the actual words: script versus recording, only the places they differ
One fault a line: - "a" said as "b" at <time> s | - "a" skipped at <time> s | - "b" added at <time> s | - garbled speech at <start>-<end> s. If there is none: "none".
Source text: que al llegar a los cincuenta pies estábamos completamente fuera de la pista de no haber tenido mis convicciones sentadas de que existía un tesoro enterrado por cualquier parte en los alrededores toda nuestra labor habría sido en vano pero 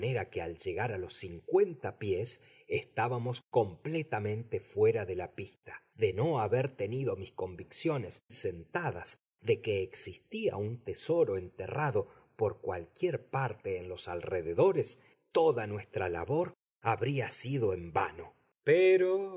none